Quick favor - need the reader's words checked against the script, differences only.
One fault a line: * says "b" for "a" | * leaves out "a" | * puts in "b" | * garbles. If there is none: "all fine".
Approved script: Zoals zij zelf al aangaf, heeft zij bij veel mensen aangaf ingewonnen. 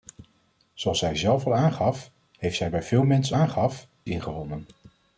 all fine